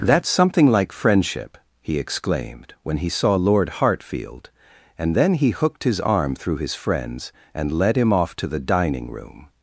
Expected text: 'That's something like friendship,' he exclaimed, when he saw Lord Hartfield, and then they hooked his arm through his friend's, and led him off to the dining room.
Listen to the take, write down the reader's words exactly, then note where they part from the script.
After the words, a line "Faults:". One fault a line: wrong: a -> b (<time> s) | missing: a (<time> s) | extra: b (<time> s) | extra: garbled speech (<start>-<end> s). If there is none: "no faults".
'That's something like friendship,' he exclaimed, when he saw Lord Hartfield, and then he hooked his arm through his friend's, and led him off to the dining room.
Faults:
wrong: they -> he (5.3 s)